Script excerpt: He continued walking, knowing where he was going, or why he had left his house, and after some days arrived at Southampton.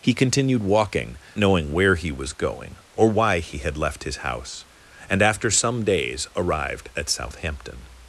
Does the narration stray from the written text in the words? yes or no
no